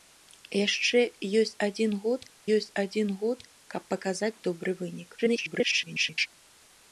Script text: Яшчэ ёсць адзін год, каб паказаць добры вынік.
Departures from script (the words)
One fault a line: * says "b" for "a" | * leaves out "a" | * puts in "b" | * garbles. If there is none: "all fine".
* puts in "ёсць адзін год"
* garbles